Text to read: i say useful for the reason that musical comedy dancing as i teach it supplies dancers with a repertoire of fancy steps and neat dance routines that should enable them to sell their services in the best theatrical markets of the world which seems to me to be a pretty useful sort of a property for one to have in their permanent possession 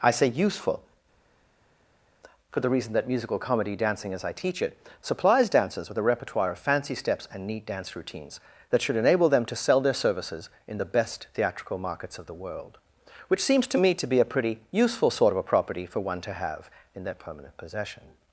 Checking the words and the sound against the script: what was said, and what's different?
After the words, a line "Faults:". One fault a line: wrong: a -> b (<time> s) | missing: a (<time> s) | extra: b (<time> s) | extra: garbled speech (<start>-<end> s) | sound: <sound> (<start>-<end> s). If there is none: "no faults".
i say useful for the reason that musical comedy dancing as i teach it supplies dancers with a repertoire of fancy steps and neat dance routines that should enable them to sell their services in the best theatrical markets of the world which seems to me to be a pretty useful sort of a property for one to have in their permanent possession
Faults:
no faults